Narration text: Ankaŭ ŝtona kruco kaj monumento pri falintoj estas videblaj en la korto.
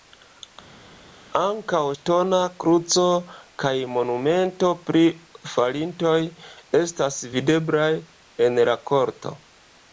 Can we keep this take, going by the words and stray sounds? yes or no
yes